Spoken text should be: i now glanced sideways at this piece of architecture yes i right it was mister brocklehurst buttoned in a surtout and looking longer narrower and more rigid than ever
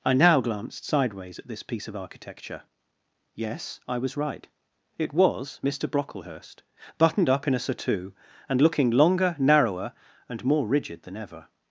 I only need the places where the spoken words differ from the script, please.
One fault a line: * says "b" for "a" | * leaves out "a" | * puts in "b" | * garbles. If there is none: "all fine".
* puts in "was"
* puts in "up"